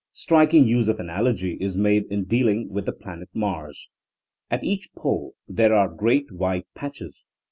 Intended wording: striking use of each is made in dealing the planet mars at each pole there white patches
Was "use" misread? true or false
false